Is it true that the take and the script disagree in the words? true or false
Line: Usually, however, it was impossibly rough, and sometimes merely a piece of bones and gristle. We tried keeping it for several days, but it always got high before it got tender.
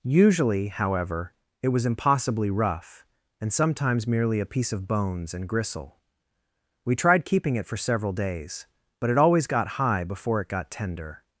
false